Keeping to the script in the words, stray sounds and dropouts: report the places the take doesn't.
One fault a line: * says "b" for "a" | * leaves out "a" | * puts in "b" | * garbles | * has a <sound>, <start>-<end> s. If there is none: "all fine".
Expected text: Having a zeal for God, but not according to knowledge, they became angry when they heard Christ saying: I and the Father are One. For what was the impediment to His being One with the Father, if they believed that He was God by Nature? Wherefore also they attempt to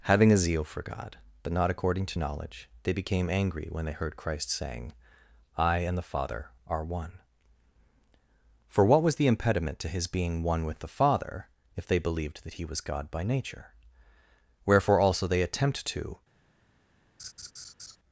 * has a laugh, 17.2-18.0 s